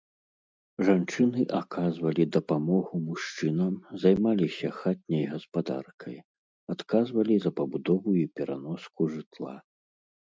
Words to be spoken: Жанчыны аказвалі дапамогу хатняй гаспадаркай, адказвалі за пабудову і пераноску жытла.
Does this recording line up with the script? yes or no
no